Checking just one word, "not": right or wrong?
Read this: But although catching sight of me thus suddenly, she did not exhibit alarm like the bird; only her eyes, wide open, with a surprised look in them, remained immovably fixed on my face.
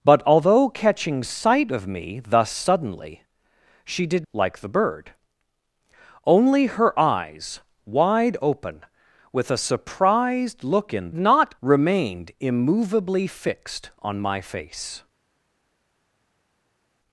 wrong